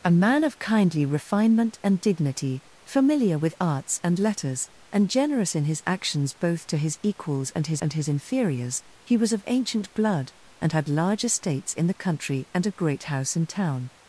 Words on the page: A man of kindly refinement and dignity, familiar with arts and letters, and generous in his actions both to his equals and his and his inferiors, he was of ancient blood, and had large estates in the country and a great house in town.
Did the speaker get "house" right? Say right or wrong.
right